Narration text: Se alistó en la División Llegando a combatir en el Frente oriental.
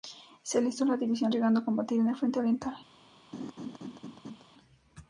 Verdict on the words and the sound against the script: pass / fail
fail